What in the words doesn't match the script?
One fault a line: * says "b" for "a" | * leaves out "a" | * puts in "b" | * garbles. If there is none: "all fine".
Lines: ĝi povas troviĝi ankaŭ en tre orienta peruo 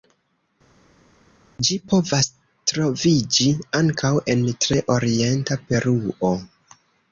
all fine